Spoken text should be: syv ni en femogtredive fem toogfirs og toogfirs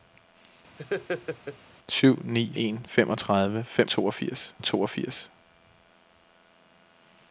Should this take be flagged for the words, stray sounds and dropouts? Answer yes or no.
yes